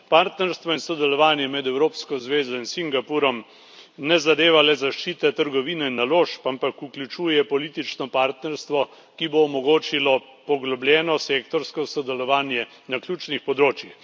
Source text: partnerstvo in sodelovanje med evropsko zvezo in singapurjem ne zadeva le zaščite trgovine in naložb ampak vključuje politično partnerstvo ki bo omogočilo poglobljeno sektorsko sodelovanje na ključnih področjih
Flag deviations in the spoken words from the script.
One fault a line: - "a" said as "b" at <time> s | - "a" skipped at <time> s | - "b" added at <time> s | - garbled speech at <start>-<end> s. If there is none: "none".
none